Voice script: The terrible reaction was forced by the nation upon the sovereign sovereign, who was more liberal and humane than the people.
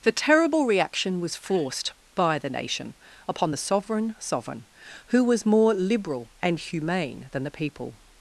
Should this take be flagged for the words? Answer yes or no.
no